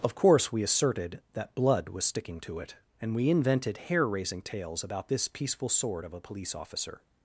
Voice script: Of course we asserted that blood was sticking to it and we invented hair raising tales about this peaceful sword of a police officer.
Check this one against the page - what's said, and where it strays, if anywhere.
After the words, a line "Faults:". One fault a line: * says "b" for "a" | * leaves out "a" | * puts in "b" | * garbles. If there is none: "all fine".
Of course we asserted that blood was sticking to it and we invented hair raising tales about this peaceful sword of a police officer.
Faults:
all fine